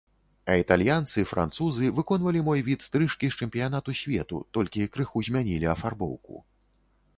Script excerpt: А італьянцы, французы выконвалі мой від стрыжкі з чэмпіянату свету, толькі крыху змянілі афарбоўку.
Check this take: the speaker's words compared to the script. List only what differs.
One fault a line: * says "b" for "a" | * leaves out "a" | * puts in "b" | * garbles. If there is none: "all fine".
all fine